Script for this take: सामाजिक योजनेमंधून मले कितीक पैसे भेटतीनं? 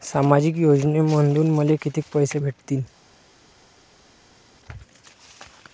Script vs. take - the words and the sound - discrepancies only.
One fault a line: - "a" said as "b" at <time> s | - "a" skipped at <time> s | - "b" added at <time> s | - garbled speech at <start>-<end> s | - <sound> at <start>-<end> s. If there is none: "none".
none